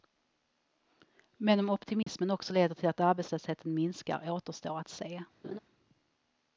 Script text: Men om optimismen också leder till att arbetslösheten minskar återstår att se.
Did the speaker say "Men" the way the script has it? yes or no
yes